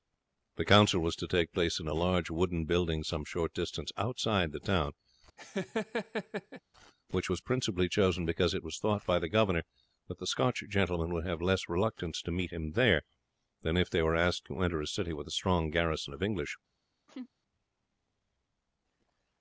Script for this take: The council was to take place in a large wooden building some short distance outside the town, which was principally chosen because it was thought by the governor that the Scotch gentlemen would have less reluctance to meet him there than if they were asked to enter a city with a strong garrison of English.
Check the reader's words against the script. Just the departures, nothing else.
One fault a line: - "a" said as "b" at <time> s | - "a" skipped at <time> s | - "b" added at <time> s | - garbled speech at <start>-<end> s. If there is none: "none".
none